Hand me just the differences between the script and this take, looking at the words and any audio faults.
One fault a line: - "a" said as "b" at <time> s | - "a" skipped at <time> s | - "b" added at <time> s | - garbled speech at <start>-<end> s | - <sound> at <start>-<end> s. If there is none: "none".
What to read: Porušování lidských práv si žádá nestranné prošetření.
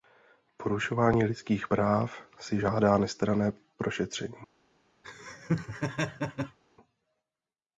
- laugh at 5.0-6.6 s